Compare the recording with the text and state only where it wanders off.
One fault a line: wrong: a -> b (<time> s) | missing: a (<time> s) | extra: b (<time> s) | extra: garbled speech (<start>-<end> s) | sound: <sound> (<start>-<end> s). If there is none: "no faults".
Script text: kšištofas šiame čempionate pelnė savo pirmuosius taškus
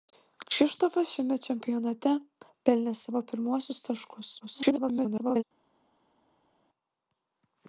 extra: garbled speech (4.4-5.4 s)